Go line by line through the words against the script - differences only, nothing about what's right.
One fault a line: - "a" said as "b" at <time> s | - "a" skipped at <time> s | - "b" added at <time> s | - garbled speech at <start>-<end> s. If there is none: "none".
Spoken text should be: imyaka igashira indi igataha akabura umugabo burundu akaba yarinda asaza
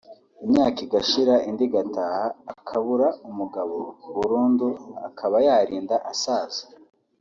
none